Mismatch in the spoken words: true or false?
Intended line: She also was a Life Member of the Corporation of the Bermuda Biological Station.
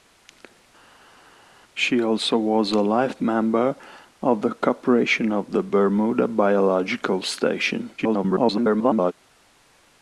true